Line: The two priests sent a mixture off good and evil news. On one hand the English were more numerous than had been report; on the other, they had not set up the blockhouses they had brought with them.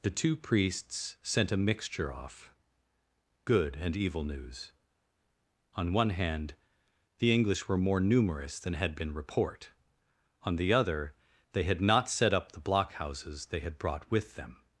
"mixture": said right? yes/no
yes